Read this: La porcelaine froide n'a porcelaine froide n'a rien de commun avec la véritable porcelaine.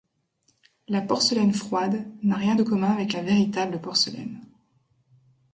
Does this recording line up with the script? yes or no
no